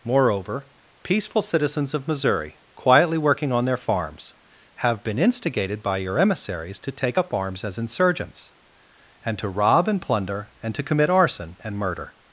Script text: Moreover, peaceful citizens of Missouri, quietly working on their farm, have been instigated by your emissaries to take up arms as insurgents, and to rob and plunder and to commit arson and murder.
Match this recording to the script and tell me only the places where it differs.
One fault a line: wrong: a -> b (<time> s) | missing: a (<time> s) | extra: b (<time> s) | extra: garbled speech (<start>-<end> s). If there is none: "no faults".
wrong: farm -> farms (3.8 s)